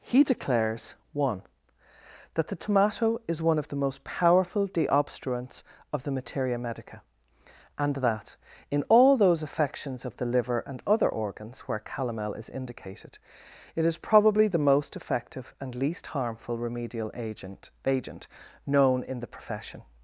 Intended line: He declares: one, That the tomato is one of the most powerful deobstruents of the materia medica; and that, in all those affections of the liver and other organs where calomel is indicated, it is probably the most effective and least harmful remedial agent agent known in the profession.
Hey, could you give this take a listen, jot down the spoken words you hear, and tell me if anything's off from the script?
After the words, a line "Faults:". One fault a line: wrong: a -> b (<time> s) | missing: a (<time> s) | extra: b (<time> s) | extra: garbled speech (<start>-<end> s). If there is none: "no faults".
He declares: one, That the tomato is one of the most powerful deobstruents of the materia medica; and that, in all those affections of the liver and other organs where calomel is indicated, it is probably the most effective and least harmful remedial agent agent known in the profession.
Faults:
no faults